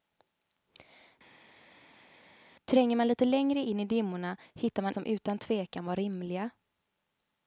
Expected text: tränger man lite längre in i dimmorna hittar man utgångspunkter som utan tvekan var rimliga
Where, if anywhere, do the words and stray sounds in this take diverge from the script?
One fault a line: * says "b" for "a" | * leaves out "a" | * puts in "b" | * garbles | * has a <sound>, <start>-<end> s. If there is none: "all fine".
* leaves out "utgångspunkter"